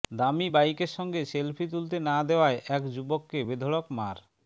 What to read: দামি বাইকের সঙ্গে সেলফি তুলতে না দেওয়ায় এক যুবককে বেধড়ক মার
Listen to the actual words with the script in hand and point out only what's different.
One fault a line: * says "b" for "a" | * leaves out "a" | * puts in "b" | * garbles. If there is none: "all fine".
all fine